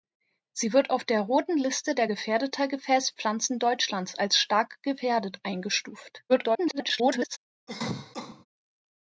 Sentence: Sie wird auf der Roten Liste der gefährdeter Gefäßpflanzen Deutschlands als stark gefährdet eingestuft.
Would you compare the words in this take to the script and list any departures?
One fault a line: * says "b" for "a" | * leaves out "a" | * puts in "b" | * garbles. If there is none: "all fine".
* garbles